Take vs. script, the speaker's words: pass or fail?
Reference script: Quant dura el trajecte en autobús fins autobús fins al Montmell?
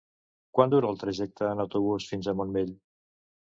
fail